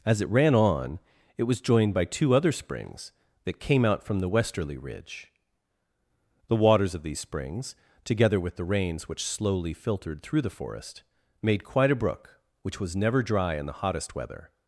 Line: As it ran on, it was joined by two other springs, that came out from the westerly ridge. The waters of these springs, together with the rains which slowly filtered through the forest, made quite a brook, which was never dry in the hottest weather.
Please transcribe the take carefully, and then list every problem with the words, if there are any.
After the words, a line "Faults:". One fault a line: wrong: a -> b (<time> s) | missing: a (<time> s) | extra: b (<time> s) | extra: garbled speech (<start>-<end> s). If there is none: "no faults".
As it ran on, it was joined by two other springs, that came out from the westerly ridge. The waters of these springs, together with the rains which slowly filtered through the forest, made quite a brook, which was never dry in the hottest weather.
Faults:
no faults